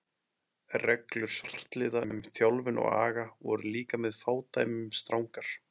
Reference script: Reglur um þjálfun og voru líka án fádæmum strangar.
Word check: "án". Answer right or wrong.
wrong